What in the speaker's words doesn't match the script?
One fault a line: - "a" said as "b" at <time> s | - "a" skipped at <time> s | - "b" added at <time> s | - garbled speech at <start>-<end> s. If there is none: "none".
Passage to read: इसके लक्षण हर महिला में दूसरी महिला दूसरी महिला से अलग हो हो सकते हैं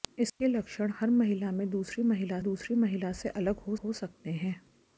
none